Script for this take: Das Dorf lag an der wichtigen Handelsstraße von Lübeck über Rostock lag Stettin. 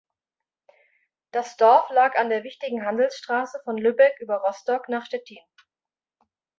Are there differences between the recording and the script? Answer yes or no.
yes